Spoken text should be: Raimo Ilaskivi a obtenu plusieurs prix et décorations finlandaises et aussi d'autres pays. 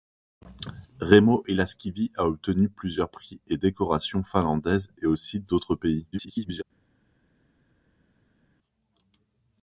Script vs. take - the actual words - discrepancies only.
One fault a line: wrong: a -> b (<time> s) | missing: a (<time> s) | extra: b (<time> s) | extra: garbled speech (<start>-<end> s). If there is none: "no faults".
extra: garbled speech (6.1-6.6 s)